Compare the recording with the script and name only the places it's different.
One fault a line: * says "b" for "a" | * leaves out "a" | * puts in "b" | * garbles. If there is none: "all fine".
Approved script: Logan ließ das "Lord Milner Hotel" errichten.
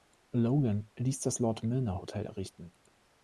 all fine